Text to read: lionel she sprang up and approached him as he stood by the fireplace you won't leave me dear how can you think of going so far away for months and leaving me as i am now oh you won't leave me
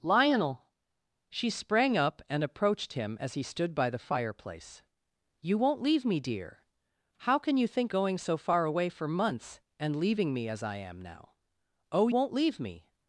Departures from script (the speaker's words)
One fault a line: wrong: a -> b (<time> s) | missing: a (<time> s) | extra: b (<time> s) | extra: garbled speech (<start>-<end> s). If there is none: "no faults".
missing: of (7.9 s)
missing: you (12.1 s)